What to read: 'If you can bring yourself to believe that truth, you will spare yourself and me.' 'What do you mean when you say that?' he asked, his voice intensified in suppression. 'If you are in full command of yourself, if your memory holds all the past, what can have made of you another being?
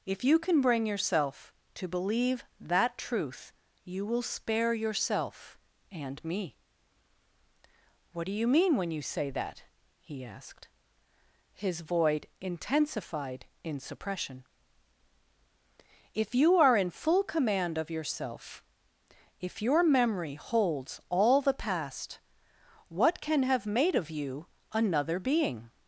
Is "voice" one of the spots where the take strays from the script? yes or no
yes